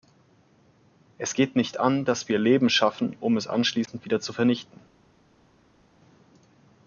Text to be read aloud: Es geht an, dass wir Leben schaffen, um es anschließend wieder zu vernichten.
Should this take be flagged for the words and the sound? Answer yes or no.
yes